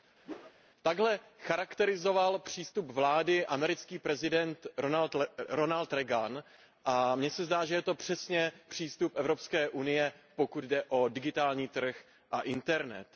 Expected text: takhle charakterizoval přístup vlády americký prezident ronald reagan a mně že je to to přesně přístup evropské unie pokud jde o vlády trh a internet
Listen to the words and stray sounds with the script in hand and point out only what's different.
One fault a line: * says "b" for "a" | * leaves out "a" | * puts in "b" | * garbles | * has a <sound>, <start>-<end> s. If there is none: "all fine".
* has a whoosh, 0.2-0.5 s
* puts in "se zdá"
* leaves out "to"
* says "digitální" for "vlády"